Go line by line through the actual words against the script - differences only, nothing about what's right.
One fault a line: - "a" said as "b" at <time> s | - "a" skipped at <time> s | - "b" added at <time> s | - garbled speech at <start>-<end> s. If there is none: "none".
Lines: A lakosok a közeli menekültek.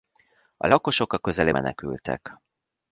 none